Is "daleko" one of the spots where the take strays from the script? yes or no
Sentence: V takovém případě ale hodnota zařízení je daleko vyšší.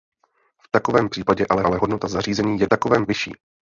yes